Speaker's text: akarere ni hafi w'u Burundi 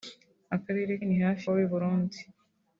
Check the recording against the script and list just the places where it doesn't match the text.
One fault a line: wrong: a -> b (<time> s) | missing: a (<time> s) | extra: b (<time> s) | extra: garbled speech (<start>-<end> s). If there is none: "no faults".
no faults